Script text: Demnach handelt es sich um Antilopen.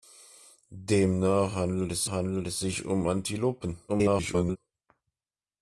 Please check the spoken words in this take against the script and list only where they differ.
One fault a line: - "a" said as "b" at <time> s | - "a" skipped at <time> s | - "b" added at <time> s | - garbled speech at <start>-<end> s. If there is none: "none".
- "handelt es" added at 2.1 s
- garbled speech at 3.9-4.6 s